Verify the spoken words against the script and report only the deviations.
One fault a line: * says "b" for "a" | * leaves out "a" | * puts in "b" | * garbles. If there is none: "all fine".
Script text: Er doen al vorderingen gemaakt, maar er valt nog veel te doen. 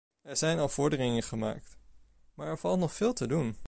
* says "zijn" for "doen"